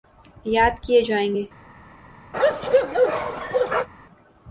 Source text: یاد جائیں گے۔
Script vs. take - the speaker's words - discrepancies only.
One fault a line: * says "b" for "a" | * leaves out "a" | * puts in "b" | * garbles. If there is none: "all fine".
* puts in "کیے"